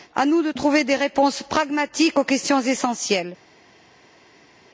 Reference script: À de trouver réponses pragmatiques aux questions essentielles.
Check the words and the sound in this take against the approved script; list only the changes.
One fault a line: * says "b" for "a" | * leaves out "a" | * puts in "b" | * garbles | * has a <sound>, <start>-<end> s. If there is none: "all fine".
* puts in "nous"
* puts in "des"